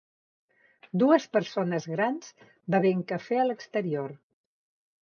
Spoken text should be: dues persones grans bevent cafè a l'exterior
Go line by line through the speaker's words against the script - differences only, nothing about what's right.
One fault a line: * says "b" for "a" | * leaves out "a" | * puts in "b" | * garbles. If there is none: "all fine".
all fine